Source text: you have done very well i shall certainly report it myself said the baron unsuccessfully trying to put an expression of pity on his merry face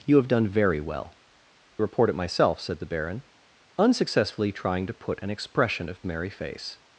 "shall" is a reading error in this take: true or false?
true